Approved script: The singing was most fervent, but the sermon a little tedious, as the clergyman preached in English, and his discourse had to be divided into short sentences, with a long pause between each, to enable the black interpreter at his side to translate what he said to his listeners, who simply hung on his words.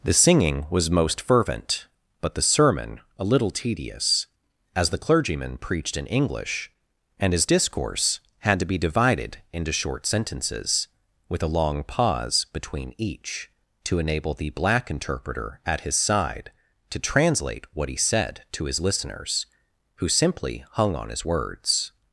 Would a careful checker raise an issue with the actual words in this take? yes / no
no